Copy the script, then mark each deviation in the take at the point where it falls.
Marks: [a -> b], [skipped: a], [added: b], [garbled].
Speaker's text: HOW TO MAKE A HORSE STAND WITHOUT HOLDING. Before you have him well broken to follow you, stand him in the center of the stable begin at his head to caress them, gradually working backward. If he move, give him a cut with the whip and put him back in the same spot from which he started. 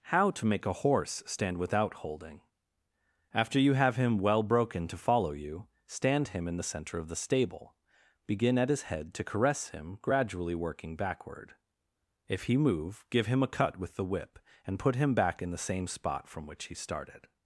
HOW TO MAKE A HORSE STAND WITHOUT HOLDING. [Before -> After] you have him well broken to follow you, stand him in the center of the stable begin at his head to caress [them, -> him] gradually working backward. If he move, give him a cut with the whip and put him back in the same spot from which he started.